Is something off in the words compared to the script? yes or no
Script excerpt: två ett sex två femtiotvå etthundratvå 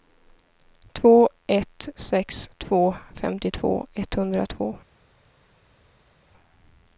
no